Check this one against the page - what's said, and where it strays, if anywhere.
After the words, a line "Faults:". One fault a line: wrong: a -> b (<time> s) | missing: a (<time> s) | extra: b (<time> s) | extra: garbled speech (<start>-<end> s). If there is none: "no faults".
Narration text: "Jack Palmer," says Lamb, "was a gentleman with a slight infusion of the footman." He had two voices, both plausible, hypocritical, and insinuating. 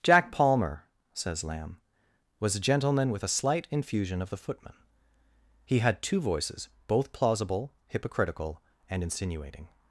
"Jack Palmer," says Lamb, "was a gentleman with a slight infusion of the footman." He had two voices, both plausible, hypocritical, and insinuating.
Faults:
no faults